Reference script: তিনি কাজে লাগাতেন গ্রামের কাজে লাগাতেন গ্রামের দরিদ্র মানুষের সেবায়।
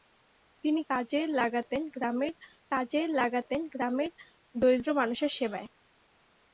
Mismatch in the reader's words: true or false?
false